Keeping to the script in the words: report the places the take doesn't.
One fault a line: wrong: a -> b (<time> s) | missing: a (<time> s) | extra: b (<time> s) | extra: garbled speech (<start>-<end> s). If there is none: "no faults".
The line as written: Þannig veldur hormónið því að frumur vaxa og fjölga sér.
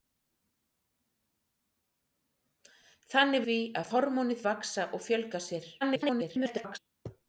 missing: veldur hormónið (3.5 s)
wrong: frumur -> hormónið (3.9 s)
extra: garbled speech (5.8-6.8 s)